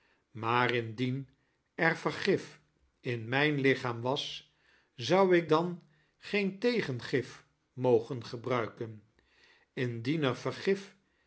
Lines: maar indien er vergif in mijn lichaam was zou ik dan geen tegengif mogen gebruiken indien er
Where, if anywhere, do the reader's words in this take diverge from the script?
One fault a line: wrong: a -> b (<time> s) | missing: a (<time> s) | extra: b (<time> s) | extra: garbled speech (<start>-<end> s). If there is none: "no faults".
no faults